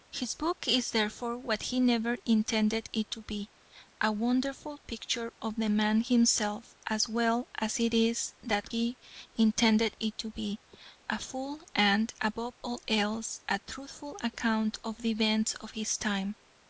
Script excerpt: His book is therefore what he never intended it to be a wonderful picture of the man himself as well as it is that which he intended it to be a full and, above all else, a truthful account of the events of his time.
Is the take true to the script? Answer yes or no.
no